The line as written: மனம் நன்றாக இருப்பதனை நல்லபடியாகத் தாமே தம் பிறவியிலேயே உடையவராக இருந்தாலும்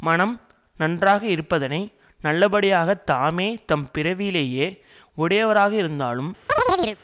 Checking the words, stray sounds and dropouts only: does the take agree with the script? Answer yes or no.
no